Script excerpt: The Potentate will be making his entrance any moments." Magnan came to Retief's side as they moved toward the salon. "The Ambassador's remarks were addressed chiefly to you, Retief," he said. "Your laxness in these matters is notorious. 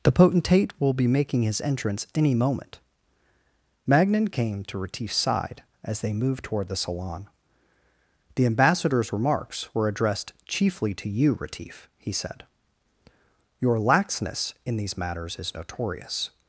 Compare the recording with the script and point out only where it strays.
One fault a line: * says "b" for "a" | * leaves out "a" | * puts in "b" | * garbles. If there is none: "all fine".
* says "moment" for "moments"